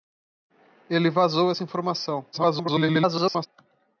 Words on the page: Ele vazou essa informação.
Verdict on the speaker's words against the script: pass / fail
fail